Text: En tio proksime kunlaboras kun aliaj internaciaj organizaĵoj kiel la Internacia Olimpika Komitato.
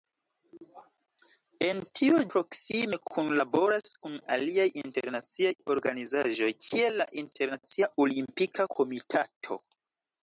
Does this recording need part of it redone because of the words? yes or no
no